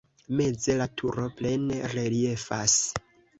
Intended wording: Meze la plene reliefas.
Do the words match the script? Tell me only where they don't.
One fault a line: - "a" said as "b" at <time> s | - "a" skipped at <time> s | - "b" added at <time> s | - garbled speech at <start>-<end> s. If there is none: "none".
- "turo" added at 1.0 s